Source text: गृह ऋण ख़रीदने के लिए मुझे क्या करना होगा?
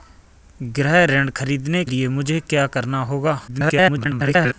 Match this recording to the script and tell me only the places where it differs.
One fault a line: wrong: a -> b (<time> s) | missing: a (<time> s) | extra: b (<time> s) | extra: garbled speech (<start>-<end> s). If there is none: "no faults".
missing: के (1.9 s)
extra: garbled speech (3.5-4.5 s)